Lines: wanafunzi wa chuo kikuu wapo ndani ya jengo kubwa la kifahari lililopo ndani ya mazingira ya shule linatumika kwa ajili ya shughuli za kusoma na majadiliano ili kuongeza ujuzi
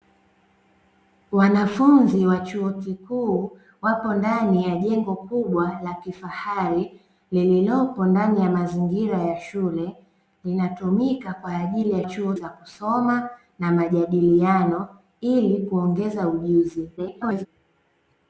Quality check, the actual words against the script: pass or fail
fail